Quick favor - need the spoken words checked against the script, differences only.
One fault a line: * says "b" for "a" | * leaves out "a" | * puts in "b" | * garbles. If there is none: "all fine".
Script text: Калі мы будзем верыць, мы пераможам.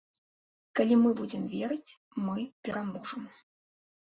all fine